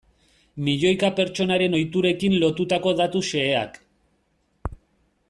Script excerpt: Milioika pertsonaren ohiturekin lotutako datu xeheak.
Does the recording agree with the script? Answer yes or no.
yes